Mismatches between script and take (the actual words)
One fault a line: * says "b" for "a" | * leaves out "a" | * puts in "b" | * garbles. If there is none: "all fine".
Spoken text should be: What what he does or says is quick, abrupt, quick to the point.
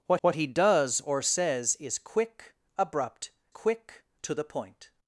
all fine